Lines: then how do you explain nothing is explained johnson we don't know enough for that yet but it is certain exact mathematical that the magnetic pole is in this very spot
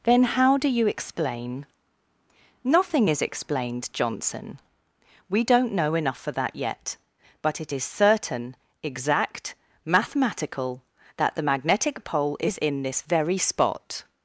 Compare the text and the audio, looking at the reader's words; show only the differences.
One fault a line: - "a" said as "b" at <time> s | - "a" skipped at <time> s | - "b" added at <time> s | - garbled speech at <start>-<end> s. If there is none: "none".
none